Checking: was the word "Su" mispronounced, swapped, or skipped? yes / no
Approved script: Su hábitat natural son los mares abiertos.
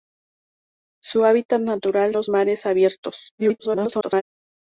no